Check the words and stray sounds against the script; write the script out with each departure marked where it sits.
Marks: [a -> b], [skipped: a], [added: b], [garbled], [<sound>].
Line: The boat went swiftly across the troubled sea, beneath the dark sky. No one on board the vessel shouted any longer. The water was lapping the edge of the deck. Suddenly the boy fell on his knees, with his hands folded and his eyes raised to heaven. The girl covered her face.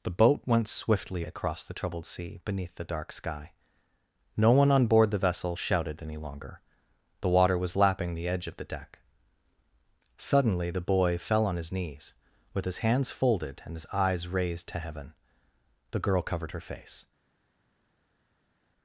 The boat went swiftly across the troubled sea, beneath the dark sky. No one on board the vessel shouted any longer. The water was lapping the edge of the deck. Suddenly the boy fell on his knees, with his hands folded and his eyes raised to heaven. The girl covered her face.